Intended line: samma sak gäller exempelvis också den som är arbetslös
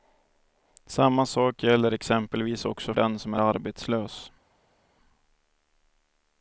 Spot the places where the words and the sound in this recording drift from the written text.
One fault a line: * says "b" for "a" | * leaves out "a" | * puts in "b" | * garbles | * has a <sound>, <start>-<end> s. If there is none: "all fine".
all fine